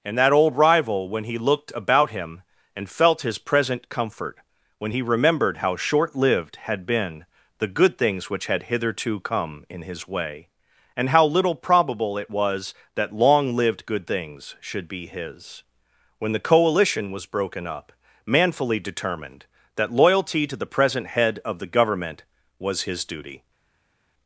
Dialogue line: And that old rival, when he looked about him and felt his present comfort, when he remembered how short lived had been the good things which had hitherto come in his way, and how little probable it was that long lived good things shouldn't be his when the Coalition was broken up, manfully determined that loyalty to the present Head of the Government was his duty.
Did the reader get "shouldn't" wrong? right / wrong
wrong